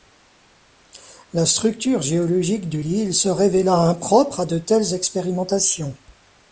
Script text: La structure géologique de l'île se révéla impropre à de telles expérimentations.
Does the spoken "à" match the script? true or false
true